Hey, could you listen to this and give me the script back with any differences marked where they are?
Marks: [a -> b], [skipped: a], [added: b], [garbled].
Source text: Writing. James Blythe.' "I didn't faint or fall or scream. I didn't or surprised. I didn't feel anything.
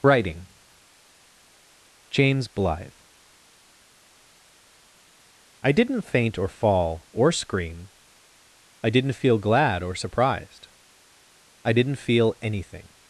Writing. James Blythe.' "I didn't faint or fall or scream. I didn't [added: feel glad] or surprised. I didn't feel anything.